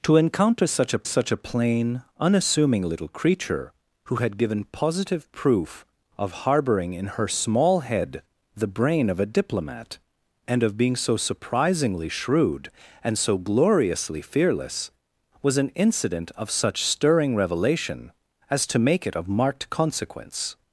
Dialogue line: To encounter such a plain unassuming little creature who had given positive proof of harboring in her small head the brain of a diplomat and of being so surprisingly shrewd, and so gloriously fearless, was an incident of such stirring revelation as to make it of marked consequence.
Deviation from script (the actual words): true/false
true